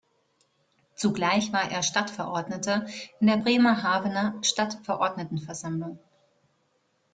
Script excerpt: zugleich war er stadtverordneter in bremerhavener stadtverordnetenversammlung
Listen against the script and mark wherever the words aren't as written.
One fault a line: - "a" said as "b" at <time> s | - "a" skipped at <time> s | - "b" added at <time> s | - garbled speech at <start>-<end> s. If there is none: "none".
- "der" added at 3.3 s